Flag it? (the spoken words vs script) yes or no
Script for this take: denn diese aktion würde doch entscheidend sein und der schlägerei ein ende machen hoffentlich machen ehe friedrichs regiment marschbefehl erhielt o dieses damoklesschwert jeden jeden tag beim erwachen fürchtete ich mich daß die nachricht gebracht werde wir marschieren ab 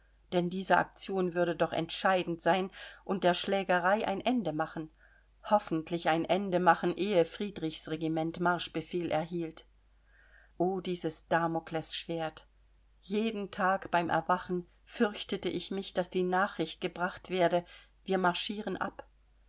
yes